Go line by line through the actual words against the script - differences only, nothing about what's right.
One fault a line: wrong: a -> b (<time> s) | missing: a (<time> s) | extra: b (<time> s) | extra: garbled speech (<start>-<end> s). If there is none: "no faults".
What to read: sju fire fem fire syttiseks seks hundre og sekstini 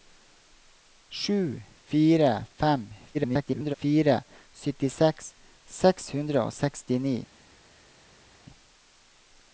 extra: garbled speech (3.1-3.7 s)